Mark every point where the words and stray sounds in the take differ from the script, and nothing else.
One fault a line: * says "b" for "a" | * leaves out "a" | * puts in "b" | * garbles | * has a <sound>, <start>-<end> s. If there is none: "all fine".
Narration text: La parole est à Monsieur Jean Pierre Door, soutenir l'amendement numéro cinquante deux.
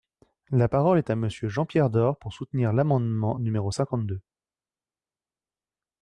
* puts in "pour"